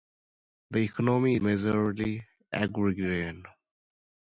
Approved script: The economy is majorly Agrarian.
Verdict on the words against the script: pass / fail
fail